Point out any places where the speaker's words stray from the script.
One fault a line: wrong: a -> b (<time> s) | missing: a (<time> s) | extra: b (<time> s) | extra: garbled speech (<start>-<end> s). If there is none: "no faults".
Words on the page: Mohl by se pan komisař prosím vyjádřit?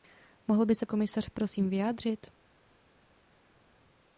missing: pan (0.8 s)